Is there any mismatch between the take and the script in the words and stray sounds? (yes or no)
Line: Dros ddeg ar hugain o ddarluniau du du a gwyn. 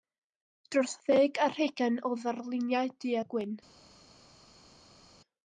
yes